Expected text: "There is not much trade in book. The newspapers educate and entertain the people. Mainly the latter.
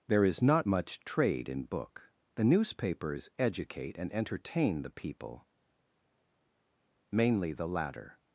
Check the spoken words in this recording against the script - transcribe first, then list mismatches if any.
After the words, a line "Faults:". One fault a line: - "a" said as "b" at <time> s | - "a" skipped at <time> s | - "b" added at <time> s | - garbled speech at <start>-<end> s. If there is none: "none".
"There is not much trade in book. The newspapers educate and entertain the people. Mainly the latter.
Faults:
none